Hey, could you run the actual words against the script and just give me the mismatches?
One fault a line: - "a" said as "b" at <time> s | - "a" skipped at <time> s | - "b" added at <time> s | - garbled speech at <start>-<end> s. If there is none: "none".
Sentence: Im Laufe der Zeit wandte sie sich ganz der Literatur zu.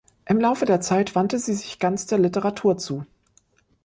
none